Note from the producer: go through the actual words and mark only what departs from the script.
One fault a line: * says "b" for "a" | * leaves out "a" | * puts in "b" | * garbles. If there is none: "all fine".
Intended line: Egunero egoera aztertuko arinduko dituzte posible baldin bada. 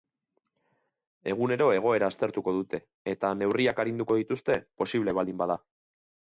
* puts in "dute eta neurriak"